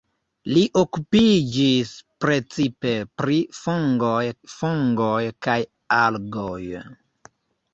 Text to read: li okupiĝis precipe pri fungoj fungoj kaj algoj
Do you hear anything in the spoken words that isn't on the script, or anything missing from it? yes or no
no